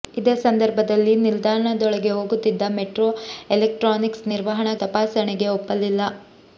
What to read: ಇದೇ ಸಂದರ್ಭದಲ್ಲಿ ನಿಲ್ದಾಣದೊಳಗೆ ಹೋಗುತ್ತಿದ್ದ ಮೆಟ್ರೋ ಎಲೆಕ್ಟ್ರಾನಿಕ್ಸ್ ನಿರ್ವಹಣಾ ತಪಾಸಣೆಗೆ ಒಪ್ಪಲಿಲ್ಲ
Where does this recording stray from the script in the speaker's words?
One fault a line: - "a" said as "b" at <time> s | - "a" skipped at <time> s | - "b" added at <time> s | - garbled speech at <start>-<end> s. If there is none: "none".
none